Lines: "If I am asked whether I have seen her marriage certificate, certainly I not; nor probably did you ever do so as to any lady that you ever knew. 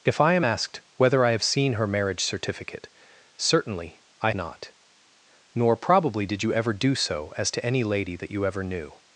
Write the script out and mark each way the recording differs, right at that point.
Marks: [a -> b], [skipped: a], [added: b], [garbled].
"If I am asked whether I have seen her marriage certificate, certainly I not; nor probably did you ever do so as to any lady that you ever knew.